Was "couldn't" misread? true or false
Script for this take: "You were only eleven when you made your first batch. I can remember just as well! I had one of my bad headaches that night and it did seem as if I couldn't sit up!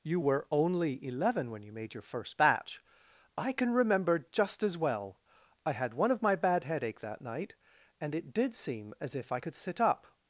true